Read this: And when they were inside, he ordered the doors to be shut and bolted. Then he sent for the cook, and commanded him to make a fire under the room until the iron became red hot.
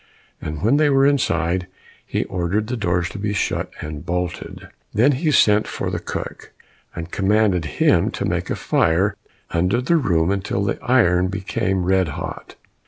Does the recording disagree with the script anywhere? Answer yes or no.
no